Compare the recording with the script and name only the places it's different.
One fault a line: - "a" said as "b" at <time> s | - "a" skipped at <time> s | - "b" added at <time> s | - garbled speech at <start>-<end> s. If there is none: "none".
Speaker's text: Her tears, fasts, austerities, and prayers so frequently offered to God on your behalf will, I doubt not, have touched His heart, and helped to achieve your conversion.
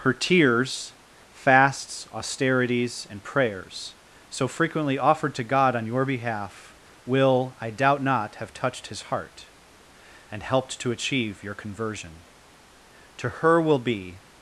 - "To her will be" added at 13.2 s